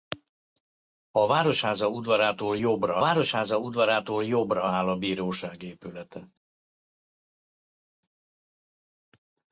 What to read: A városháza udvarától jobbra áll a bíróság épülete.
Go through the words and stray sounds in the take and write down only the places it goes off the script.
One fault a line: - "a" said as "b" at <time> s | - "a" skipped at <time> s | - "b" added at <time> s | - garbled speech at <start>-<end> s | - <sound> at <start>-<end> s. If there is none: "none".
- "városháza udvarától jobbra" added at 3.0 s